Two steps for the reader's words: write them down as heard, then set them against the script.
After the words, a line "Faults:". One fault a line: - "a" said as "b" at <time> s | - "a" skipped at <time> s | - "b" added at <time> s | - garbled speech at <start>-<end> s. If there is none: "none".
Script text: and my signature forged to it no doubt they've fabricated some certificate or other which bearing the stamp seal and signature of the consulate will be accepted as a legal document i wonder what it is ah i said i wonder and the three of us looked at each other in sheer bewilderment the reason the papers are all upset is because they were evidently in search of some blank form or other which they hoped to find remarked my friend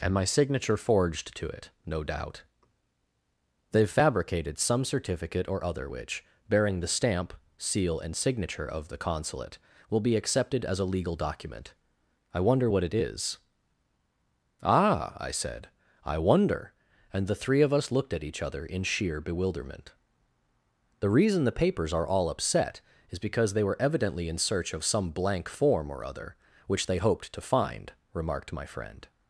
and my signature forged to it no doubt they've fabricated some certificate or other which bearing the stamp seal and signature of the consulate will be accepted as a legal document i wonder what it is ah i said i wonder and the three of us looked at each other in sheer bewilderment the reason the papers are all upset is because they were evidently in search of some blank form or other which they hoped to find remarked my friend
Faults:
none